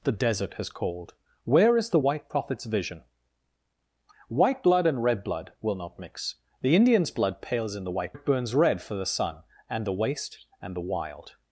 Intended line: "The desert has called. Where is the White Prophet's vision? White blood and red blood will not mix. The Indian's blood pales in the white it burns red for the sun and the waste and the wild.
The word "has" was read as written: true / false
true